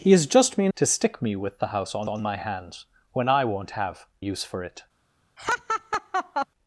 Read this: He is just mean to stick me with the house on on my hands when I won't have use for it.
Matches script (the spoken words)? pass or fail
pass